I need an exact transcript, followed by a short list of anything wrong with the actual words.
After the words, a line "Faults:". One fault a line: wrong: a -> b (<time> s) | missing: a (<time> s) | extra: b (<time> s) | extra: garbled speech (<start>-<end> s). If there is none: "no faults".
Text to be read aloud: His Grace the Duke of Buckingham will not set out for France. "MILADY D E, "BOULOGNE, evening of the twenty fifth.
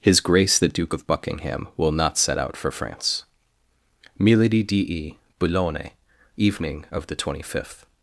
His Grace the Duke of Buckingham will not set out for France. "MILADY D E, "BOULOGNE, evening of the twenty fifth.
Faults:
no faults